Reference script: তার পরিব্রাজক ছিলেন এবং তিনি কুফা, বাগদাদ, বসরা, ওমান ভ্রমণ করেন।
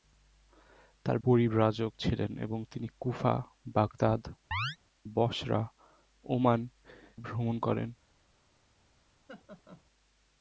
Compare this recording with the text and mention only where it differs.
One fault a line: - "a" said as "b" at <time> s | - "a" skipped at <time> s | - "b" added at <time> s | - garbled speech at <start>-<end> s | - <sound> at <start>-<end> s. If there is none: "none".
- chirp at 4.5-4.8 s
- laugh at 9.3-9.8 s